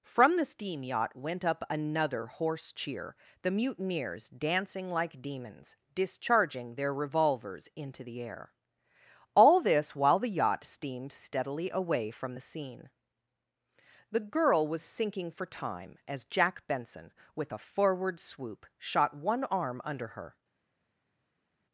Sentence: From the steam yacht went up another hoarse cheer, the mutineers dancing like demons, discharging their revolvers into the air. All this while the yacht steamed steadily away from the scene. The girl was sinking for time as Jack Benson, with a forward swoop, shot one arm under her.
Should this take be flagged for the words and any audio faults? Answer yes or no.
no